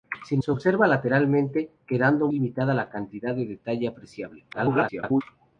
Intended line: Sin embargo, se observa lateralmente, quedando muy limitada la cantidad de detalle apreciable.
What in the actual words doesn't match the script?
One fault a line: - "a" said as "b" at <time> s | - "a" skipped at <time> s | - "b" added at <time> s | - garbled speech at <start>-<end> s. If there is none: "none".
- "embargo" skipped at 0.4 s
- "muy" skipped at 2.3 s
- garbled speech at 4.5-5.2 s